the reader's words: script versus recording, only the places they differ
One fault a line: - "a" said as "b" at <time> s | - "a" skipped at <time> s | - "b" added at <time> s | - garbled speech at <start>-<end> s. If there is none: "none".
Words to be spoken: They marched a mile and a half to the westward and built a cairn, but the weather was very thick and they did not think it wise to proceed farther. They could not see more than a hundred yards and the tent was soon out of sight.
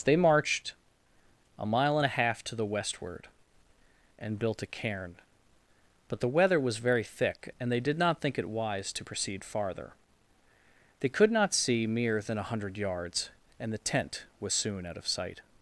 - "more" said as "mere" at 11.9 s